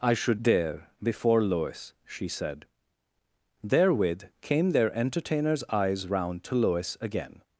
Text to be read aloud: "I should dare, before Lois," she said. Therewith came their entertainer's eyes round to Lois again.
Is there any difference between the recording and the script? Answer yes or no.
no